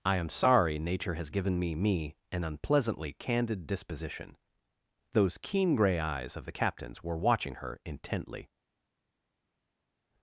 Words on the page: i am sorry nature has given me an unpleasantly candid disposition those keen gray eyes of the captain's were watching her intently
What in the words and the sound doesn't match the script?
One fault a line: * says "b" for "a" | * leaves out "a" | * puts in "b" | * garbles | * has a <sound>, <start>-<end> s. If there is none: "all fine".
* puts in "me"